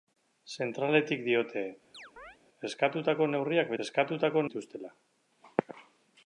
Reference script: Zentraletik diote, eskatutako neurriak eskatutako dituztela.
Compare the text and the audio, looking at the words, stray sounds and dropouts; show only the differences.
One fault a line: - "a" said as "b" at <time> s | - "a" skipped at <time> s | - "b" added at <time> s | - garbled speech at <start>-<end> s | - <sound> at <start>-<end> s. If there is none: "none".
- chirp at 1.9-2.4 s